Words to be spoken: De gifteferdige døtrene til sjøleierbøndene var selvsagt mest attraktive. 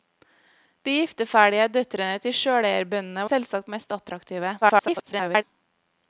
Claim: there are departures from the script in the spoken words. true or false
true